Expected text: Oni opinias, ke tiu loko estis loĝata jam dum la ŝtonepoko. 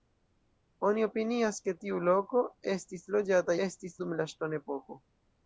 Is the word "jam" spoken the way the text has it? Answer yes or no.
no